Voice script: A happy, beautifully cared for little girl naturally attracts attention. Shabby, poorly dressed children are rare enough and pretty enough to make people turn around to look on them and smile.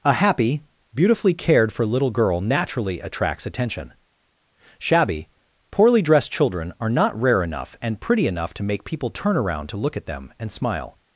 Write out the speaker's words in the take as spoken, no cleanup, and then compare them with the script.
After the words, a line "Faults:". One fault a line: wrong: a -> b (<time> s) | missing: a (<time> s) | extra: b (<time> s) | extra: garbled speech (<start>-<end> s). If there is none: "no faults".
A happy, beautifully cared for little girl naturally attracts attention. Shabby, poorly dressed children are not rare enough and pretty enough to make people turn around to look at them and smile.
Faults:
extra: not (6.9 s)
wrong: on -> at (9.9 s)